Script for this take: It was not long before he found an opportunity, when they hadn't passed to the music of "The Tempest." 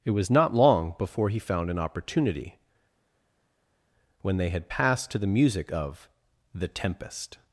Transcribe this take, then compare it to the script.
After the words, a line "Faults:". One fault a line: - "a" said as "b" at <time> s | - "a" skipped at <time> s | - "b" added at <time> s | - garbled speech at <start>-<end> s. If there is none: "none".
It was not long before he found an opportunity, when they had passed to the music of "The Tempest."
Faults:
- "hadn't" said as "had" at 4.5 s